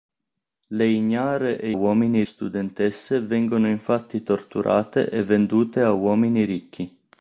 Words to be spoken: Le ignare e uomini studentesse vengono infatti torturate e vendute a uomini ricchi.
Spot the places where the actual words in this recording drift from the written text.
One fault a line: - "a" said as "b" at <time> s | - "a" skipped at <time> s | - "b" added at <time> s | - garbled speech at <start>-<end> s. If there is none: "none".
none